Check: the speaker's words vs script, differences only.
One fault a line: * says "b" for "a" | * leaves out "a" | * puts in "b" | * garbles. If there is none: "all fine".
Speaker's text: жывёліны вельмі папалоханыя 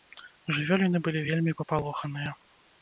* puts in "былі"